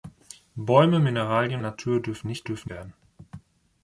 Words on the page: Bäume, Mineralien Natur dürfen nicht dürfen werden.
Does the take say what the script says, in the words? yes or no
yes